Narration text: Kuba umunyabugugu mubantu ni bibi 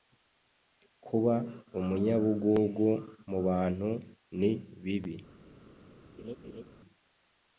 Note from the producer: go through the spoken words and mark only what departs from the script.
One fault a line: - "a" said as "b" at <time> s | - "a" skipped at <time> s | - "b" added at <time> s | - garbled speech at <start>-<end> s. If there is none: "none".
none